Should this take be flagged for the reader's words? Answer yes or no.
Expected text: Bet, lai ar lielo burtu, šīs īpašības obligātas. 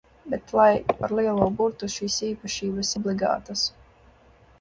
no